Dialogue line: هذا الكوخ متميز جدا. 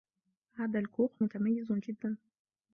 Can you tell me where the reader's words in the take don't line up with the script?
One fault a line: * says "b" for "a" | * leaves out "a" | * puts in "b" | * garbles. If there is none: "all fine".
all fine